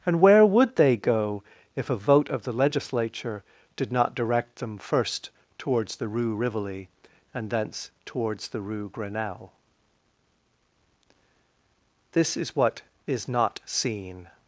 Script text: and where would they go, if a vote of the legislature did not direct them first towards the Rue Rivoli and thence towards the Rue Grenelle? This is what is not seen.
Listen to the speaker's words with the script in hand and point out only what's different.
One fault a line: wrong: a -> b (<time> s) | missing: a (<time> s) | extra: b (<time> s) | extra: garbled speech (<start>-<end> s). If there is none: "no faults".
no faults